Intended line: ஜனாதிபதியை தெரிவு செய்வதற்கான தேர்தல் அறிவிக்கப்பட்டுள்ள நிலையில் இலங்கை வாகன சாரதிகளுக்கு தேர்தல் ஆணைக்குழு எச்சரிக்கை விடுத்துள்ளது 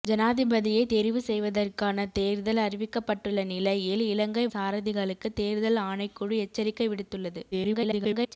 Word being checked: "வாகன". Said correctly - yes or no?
no